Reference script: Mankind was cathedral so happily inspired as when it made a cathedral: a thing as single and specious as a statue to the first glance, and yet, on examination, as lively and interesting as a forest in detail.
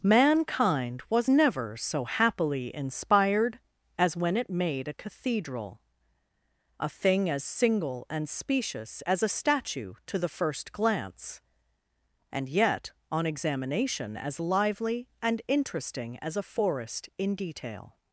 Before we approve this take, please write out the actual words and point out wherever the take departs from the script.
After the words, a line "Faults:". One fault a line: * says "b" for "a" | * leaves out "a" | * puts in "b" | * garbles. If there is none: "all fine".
Mankind was never so happily inspired as when it made a cathedral: a thing as single and specious as a statue to the first glance, and yet, on examination, as lively and interesting as a forest in detail.
Faults:
* says "never" for "cathedral"